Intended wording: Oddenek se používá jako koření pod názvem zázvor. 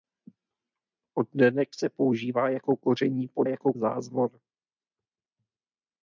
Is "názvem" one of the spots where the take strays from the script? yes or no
yes